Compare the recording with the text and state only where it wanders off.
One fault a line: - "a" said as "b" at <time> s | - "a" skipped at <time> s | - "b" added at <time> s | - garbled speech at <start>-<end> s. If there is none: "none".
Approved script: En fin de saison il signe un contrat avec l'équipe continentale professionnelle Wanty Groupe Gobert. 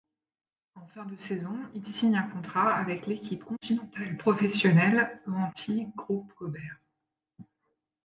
none